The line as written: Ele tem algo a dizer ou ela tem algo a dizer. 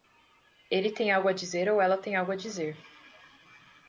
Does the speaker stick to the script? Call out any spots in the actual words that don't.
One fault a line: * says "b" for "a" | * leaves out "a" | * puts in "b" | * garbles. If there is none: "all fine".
all fine